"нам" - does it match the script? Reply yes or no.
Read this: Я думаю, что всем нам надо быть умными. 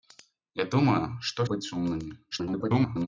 no